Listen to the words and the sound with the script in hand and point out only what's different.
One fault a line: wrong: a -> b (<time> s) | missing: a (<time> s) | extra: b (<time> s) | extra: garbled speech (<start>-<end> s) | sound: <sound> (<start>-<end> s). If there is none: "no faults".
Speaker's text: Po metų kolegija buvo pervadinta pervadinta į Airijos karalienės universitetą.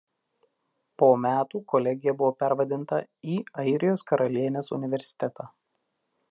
missing: pervadinta (3.0 s)